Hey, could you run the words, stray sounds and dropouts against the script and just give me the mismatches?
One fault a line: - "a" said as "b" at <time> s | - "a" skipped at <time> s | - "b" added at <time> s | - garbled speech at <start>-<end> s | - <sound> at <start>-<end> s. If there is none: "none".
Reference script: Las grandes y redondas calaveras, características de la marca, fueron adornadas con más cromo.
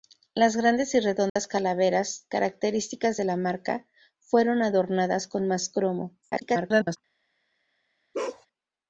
- dropout at 1.3-1.4 s
- garbled speech at 6.2-7.0 s
- bark at 8.1-8.5 s